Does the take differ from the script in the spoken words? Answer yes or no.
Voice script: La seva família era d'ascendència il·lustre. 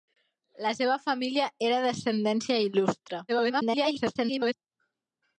yes